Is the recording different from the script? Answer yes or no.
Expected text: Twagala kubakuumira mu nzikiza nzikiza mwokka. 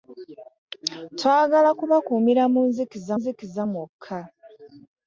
no